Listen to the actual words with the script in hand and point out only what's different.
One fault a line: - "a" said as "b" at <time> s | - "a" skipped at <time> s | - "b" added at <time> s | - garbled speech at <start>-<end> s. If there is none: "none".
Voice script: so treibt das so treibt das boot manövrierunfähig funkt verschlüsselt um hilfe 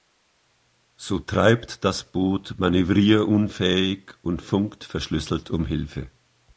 - "so treibt das" skipped at 2.0 s
- "und" added at 4.2 s